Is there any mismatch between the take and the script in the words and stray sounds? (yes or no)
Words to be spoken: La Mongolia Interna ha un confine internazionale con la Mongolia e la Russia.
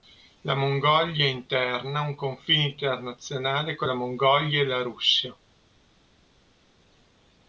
no